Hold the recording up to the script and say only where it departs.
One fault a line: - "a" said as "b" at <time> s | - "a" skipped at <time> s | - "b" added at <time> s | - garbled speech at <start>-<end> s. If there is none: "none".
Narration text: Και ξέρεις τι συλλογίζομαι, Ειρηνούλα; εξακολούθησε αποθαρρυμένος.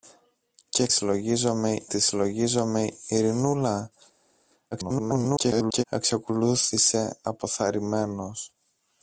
- "ξέρεις" said as "συλλογίζομαι" at 0.9 s
- garbled speech at 4.7-5.8 s